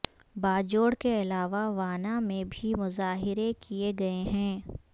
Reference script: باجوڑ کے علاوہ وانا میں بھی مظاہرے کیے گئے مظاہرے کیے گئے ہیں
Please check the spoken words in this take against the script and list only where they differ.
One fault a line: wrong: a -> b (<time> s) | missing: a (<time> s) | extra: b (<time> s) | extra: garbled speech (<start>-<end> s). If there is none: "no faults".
missing: مظاہرے کیے گئے (4.2 s)